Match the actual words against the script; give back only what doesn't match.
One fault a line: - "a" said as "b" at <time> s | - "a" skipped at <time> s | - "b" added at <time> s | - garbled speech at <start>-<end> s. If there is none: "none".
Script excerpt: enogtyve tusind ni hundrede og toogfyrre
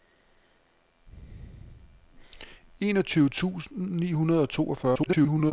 - garbled speech at 4.9-5.5 s